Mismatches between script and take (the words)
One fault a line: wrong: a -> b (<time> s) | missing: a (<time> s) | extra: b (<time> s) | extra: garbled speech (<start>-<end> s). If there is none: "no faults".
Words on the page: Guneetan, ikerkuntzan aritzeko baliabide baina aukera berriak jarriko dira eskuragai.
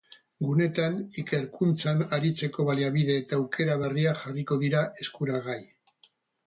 wrong: baina -> eta (3.2 s)